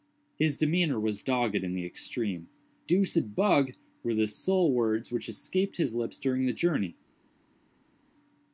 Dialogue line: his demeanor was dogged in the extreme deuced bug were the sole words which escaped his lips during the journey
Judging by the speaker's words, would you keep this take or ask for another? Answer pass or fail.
pass